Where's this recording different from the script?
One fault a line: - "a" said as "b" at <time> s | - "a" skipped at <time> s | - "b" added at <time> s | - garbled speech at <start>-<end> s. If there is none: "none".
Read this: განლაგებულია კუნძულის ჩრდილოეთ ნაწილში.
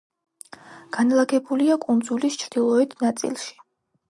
none